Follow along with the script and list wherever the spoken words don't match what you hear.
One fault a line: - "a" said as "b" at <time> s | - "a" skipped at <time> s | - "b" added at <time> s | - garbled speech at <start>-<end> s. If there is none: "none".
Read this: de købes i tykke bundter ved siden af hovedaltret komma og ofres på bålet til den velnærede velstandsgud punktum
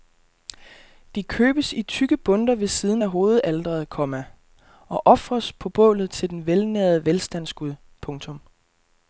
none